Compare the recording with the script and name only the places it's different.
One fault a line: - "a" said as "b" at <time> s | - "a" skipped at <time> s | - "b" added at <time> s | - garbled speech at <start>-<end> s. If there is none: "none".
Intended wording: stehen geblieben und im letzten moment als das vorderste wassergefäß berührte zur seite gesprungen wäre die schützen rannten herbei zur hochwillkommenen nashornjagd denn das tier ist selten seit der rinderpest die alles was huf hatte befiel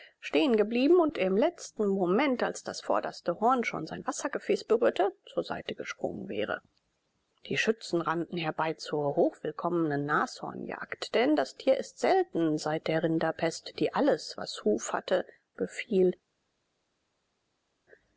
- "horn schon sein" added at 3.4 s